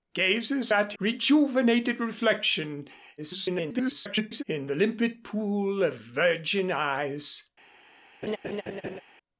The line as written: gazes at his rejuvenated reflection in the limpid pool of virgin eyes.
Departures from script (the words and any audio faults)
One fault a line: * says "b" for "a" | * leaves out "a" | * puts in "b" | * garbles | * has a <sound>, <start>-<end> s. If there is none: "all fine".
* leaves out "his"
* garbles
* has a laugh, 8.2-9.0 s